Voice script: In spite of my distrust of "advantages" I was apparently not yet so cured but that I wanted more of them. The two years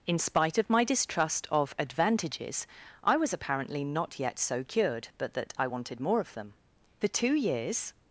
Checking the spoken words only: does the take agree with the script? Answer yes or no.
yes